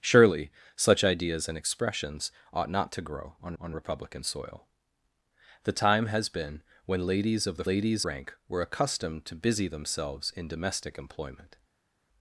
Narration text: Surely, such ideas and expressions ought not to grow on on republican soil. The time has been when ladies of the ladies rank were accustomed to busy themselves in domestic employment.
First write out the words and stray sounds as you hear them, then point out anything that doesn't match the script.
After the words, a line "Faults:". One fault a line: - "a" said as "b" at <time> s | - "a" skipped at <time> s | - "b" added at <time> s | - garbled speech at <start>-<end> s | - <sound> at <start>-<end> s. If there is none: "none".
Surely, such ideas and expressions ought not to grow on on republican soil. The time has been when ladies of the ladies rank were accustomed to busy themselves in domestic employment.
Faults:
none